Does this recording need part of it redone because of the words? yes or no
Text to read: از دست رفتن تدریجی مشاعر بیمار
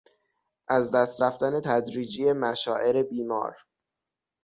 no